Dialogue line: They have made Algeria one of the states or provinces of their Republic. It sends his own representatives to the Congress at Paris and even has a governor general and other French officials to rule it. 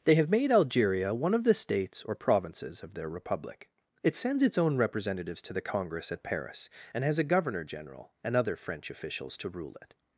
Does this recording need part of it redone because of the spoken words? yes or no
yes